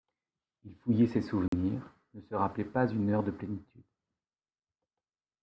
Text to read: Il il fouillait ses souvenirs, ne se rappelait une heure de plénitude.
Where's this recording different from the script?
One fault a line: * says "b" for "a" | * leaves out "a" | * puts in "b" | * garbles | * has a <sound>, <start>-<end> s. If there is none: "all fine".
* leaves out "il"
* has a dropout, 1.5-1.5 s
* puts in "pas"